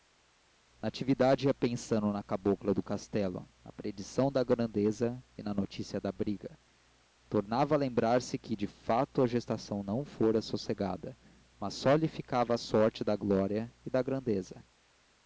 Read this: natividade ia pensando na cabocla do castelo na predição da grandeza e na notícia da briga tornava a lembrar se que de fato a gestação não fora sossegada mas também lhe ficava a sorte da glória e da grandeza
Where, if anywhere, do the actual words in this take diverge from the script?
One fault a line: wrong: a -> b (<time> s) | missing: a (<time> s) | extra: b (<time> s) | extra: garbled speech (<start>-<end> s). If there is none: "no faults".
wrong: também -> só (11.8 s)